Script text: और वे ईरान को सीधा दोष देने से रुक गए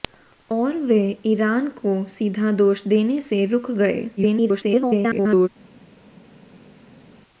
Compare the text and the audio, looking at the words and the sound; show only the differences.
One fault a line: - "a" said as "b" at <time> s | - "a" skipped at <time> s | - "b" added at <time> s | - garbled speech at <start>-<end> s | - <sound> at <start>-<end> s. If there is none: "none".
- garbled speech at 4.2-5.5 s